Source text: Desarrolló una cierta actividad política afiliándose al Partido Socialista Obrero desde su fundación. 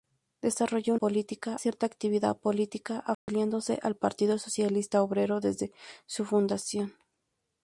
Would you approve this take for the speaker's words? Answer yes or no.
no